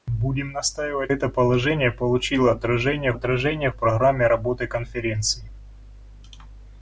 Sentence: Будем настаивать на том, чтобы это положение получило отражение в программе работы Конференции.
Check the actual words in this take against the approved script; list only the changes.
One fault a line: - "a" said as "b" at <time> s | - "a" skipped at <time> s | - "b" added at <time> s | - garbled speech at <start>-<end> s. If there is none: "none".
- "на том чтобы" skipped at 1.1 s
- "отражение" added at 3.1 s